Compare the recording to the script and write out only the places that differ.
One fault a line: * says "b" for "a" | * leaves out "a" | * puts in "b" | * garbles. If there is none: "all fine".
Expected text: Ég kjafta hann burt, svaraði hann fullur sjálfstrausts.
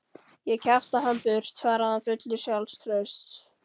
all fine